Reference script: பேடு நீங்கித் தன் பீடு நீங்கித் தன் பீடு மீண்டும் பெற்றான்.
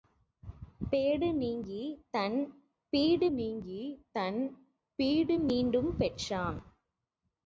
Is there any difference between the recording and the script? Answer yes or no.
no